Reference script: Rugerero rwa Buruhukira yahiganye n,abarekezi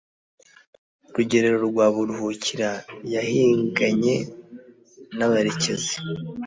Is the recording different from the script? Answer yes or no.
no